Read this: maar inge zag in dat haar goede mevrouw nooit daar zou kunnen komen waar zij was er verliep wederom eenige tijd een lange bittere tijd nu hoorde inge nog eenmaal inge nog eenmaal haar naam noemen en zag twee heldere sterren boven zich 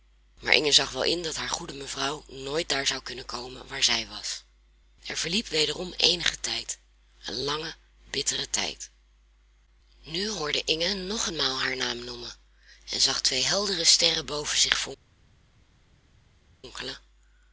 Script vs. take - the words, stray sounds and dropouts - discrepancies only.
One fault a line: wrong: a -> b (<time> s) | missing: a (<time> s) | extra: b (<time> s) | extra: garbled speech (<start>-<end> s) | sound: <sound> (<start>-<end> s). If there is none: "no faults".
extra: wel (0.9 s)
missing: inge nog eenmaal (11.6 s)